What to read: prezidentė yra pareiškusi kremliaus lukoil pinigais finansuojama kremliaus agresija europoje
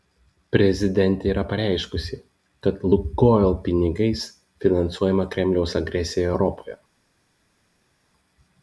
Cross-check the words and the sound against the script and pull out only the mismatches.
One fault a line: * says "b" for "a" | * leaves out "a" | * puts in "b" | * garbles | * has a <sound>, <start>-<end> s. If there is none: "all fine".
* says "kad" for "kremliaus"